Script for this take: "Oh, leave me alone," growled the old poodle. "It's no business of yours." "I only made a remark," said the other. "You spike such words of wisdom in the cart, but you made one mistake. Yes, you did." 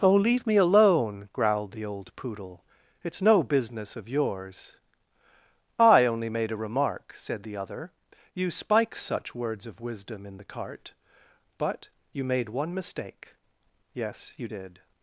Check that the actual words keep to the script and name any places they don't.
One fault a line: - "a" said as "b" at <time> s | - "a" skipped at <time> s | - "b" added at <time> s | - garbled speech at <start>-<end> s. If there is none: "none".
none